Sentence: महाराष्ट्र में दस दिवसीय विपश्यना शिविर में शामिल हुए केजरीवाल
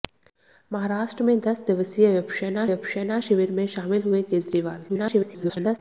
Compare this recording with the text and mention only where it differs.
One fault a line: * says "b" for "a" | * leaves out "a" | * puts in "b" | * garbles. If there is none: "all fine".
* puts in "विपश्यना"
* garbles